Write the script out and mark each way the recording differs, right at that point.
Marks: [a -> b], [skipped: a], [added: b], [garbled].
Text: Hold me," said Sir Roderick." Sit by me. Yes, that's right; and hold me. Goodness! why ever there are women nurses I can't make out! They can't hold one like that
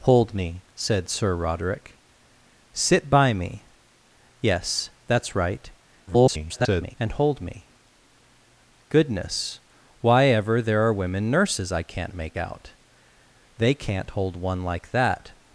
Hold me," said Sir Roderick." Sit by me. Yes, that's right; [garbled] and hold me. Goodness! why ever there are women nurses I can't make out! They can't hold one like that